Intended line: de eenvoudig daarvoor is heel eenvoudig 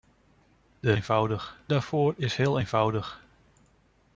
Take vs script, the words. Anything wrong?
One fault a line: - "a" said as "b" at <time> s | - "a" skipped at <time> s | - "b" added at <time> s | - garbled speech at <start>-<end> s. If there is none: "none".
none